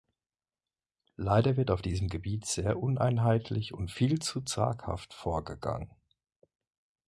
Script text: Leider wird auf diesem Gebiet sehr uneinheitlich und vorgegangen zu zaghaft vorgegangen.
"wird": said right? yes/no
yes